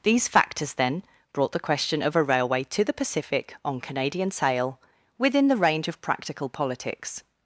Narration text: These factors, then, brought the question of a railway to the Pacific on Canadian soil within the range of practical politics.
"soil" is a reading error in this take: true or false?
true